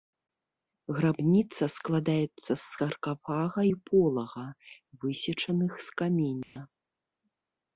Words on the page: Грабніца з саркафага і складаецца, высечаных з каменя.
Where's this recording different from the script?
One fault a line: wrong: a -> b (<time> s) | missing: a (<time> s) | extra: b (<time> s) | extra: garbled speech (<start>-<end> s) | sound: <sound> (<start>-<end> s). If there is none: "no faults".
extra: складаецца (1.7 s)
wrong: складаецца -> полага (3.9 s)
sound: dropout (6.4-6.6 s)